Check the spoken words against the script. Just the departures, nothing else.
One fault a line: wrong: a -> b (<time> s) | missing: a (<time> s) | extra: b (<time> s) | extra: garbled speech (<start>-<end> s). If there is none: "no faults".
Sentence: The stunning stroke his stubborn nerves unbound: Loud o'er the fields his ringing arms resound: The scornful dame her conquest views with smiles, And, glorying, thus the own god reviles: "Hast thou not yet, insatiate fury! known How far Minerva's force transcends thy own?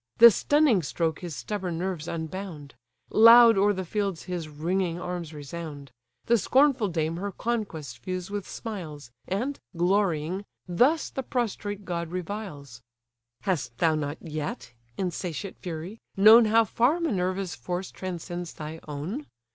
wrong: own -> prostrate (11.2 s)